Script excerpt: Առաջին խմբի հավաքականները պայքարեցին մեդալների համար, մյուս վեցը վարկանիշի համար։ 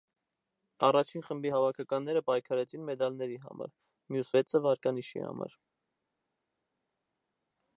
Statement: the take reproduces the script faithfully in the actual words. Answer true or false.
true